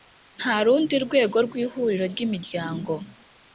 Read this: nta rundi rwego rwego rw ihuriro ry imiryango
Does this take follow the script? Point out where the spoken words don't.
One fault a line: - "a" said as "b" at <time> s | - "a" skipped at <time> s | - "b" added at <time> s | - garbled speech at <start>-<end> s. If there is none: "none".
- "rwego" skipped at 1.4 s